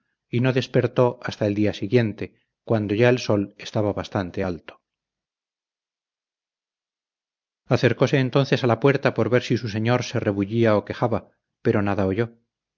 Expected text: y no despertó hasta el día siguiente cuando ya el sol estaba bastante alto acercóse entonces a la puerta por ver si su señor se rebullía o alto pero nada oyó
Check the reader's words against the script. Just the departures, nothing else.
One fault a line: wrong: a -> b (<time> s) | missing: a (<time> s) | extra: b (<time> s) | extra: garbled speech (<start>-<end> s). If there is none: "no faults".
wrong: alto -> quejaba (10.9 s)